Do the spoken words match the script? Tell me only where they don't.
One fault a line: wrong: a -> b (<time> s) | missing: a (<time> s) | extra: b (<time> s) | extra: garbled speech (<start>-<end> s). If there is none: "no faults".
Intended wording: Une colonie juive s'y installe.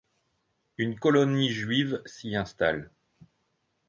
no faults